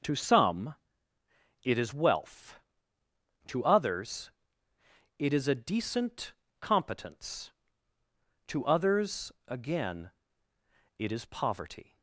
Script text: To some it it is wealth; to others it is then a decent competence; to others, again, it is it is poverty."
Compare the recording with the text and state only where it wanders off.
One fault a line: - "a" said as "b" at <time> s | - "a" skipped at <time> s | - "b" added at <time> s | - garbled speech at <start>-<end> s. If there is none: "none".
- "it" skipped at 1.8 s
- "then" skipped at 5.5 s
- "it is" skipped at 11.2 s